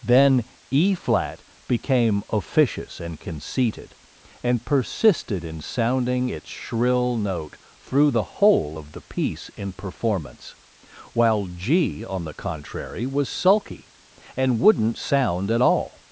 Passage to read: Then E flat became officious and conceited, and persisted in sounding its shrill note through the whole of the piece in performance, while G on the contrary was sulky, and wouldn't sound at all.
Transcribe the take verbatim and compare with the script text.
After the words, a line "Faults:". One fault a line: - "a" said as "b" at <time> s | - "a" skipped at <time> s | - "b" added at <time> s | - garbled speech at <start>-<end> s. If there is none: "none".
Then E flat became officious and conceited, and persisted in sounding its shrill note through the whole of the piece in performance, while G on the contrary was sulky, and wouldn't sound at all.
Faults:
none